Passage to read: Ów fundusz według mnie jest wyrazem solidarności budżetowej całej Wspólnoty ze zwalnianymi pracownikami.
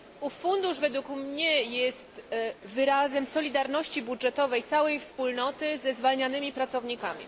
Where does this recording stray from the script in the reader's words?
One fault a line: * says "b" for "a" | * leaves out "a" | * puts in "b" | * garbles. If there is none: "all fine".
all fine